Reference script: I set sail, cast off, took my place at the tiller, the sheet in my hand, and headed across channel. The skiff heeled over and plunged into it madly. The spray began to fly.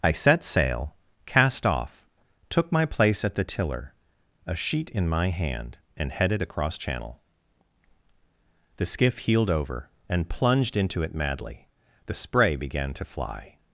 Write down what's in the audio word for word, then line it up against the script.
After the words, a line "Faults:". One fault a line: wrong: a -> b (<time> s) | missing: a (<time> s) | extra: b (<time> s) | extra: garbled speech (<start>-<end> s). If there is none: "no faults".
I set sail, cast off, took my place at the tiller, a sheet in my hand, and headed across channel. The skiff heeled over and plunged into it madly. The spray began to fly.
Faults:
wrong: the -> a (4.5 s)